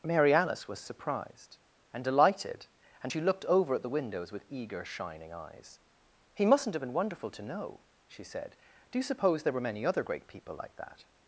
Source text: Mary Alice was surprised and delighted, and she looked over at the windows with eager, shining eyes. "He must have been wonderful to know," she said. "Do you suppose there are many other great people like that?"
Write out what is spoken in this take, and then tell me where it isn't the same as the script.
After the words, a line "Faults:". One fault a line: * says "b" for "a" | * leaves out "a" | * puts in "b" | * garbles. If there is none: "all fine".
Mary Alice was surprised and delighted, and she looked over at the windows with eager, shining eyes. "He mustn't have been wonderful to know," she said. "Do you suppose there were many other great people like that?"
Faults:
* says "mustn't" for "must"
* says "were" for "are"